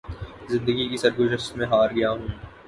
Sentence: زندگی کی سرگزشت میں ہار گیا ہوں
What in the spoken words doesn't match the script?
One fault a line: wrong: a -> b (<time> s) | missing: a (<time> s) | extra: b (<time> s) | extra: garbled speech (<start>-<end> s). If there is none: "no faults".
no faults